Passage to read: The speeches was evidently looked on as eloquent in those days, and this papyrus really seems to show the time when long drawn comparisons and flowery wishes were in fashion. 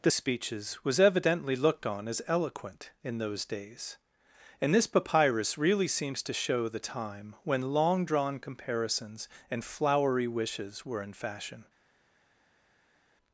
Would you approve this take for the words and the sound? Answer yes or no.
yes